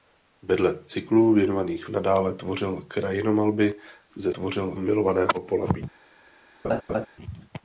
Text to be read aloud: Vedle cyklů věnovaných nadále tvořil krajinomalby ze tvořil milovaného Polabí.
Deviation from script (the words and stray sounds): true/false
true